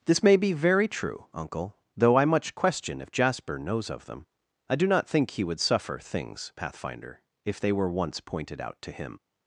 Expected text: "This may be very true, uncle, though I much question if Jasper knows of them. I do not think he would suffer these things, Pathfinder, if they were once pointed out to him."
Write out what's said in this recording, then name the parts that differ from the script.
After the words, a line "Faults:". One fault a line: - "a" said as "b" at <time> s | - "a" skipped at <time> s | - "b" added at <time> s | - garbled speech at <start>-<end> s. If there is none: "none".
"This may be very true, uncle, though I much question if Jasper knows of them. I do not think he would suffer things, Pathfinder, if they were once pointed out to him."
Faults:
- "these" skipped at 6.0 s